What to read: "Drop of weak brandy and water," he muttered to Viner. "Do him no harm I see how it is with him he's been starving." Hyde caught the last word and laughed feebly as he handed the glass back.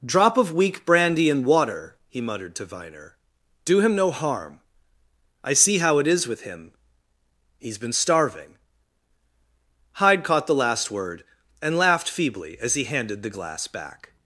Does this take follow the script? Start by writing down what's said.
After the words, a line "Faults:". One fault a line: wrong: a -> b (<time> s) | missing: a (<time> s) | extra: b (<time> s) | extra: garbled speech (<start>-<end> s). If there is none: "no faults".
"Drop of weak brandy and water," he muttered to Viner. "Do him no harm I see how it is with him he's been starving." Hyde caught the last word and laughed feebly as he handed the glass back.
Faults:
no faults